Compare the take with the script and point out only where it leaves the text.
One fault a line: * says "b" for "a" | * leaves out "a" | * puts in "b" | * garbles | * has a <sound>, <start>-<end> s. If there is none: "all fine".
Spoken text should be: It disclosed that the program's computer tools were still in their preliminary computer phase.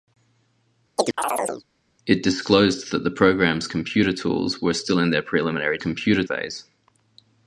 * has a chirp, 1.0-1.6 s